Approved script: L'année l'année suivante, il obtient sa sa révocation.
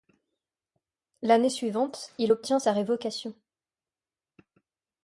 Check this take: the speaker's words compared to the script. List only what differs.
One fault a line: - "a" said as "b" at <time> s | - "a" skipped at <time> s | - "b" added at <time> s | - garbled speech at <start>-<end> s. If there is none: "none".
- "l'année" skipped at 1.5 s
- "sa" skipped at 2.7 s